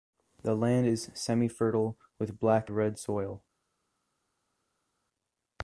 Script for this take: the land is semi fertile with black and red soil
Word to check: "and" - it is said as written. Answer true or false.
false